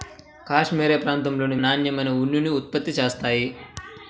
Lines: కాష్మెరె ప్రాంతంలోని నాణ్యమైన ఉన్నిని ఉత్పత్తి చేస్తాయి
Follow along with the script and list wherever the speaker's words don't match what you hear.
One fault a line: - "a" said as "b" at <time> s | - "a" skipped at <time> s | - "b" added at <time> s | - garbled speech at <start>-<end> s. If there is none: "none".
none